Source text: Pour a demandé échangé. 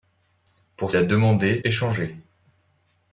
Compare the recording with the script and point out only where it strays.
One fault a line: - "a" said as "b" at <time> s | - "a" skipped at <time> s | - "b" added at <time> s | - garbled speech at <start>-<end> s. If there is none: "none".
none